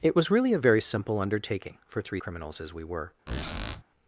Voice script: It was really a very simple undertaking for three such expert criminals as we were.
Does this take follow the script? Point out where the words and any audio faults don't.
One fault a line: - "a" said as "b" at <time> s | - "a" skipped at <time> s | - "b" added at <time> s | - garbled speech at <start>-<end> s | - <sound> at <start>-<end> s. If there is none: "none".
- "such expert" skipped at 2.2 s
- squeak at 3.3-3.8 s